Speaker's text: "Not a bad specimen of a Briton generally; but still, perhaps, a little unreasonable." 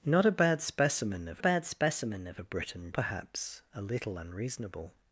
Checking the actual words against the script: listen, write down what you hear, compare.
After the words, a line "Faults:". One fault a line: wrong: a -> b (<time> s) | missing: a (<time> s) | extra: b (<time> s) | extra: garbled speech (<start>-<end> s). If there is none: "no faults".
"Not a bad specimen of bad specimen of a Briton perhaps, a little unreasonable."
Faults:
wrong: a Briton generally but still -> bad specimen of a Briton (1.4 s)